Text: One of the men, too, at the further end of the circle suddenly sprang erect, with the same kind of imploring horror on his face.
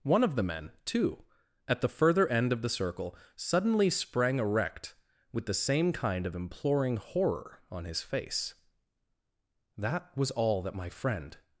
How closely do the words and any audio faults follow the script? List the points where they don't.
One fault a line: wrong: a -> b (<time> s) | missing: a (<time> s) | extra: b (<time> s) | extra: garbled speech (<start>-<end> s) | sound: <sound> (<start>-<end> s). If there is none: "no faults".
extra: That was all that my friend (9.8 s)